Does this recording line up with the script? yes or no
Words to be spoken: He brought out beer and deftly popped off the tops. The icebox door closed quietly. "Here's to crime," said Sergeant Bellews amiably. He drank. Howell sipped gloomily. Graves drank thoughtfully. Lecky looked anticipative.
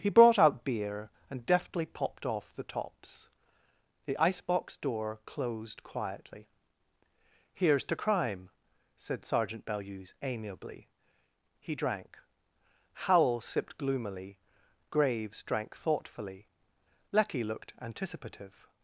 yes